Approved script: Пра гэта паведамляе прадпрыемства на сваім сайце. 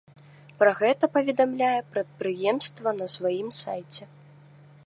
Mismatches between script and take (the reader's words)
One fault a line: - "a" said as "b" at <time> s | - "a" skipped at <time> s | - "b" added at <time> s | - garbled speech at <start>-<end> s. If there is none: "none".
none